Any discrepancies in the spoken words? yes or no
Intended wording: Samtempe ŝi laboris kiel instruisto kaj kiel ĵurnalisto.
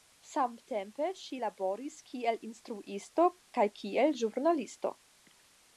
no